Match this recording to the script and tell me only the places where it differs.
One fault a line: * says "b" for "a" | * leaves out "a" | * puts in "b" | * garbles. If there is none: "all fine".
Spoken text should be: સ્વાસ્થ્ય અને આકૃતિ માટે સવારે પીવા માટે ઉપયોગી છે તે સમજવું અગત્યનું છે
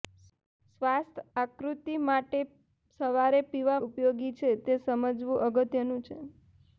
* leaves out "અને"
* leaves out "માટે"